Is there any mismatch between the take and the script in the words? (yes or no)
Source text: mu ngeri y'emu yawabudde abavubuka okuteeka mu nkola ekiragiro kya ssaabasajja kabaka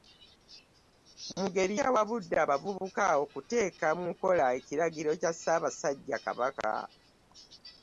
yes